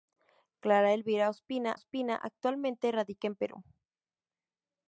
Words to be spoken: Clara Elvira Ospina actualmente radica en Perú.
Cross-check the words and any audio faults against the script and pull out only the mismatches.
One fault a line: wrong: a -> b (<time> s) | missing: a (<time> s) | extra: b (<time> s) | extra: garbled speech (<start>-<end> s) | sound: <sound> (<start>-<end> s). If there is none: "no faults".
extra: Ospina (1.7 s)